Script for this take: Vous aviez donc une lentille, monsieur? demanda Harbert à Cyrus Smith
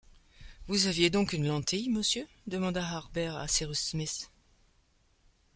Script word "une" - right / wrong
right